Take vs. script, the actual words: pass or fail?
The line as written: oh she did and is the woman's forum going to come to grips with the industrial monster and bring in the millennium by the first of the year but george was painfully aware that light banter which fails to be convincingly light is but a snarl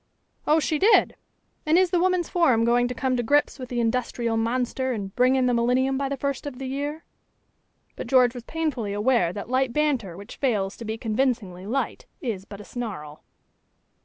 pass